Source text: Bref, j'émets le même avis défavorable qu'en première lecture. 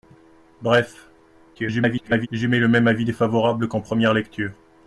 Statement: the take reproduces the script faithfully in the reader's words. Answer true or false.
false